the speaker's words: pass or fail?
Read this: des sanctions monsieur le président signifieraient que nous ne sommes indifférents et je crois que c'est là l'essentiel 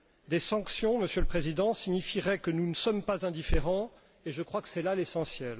fail